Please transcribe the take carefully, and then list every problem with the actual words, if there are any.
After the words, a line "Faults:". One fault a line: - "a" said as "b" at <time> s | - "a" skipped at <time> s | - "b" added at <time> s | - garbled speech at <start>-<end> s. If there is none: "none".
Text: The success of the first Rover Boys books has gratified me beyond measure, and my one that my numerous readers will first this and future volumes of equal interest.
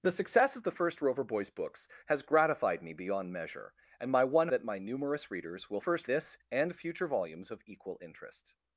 The success of the first Rover Boys books has gratified me beyond measure, and my one that my numerous readers will first this and future volumes of equal interest.
Faults:
none